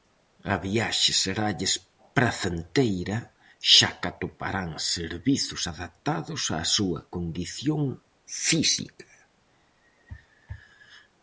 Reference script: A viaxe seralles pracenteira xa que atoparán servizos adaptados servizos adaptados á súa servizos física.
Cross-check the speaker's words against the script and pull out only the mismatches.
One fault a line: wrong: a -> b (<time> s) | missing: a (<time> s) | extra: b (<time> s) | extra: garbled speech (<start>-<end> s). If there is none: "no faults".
missing: servizos adaptados (6.4 s)
wrong: servizos -> condición (7.1 s)